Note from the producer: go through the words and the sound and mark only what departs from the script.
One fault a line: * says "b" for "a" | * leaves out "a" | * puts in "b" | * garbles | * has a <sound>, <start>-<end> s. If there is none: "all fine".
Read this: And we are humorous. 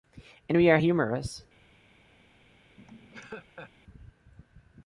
* has a laugh, 2.8-3.7 s